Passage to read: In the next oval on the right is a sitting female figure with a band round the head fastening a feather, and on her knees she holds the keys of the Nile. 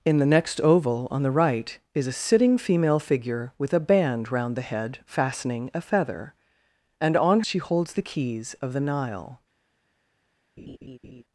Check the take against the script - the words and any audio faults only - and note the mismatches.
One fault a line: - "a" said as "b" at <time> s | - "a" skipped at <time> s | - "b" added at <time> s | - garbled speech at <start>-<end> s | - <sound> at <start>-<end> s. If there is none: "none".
- "her knees" skipped at 7.4 s
- laugh at 10.6-11.2 s